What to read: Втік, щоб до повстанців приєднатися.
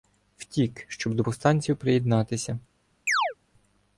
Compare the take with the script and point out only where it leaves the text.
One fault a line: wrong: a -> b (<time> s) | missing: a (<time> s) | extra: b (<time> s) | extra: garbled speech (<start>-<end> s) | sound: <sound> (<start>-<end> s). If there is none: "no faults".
sound: chirp (3.1-3.3 s)